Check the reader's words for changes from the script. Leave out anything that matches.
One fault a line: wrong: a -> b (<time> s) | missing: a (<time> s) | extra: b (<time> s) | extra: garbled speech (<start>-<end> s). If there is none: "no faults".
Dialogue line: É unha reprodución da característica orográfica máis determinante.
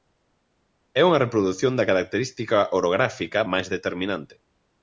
no faults